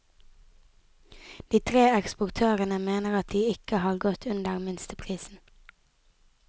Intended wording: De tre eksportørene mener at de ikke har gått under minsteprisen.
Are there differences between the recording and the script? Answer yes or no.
no